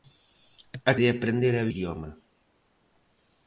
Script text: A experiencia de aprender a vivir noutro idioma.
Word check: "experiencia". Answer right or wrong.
wrong